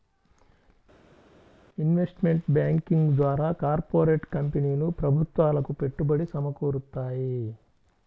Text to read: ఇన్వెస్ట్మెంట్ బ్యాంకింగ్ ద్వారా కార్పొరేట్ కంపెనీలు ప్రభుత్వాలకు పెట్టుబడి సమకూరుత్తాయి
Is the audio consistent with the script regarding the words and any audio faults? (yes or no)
yes